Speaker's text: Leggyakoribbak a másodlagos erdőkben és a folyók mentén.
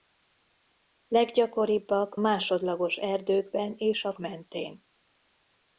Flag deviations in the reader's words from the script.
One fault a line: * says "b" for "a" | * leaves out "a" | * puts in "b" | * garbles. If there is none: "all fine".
* leaves out "a"
* leaves out "folyók"